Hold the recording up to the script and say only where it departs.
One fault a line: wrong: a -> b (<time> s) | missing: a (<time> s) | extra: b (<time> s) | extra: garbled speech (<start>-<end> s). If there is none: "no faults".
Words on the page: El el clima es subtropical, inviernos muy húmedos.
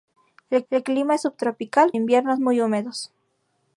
no faults